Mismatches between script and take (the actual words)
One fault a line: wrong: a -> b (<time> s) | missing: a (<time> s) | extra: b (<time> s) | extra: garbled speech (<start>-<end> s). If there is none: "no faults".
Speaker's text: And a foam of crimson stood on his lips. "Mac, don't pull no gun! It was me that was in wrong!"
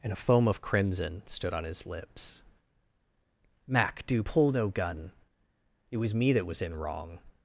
wrong: don't -> do (4.1 s)